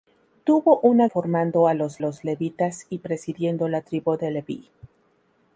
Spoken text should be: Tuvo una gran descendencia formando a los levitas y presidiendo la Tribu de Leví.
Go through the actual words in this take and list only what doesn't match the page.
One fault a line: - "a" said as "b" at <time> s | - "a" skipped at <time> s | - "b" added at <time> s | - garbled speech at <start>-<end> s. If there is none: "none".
- "gran descendencia" skipped at 1.1 s
- "los" added at 2.0 s